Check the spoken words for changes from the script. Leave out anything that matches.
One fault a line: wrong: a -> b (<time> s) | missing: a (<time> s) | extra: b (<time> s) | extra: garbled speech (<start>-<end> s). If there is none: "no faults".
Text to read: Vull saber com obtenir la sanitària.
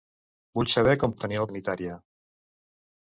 no faults